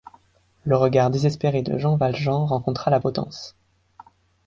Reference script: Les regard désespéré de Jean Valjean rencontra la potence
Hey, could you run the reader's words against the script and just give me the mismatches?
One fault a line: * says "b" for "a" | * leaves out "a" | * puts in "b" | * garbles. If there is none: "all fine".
* says "Le" for "Les"